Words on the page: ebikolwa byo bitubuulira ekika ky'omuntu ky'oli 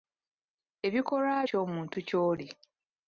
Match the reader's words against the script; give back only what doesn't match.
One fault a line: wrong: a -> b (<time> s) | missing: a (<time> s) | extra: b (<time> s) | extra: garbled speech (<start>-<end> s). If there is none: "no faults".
missing: byo bitubuulira ekika (1.4 s)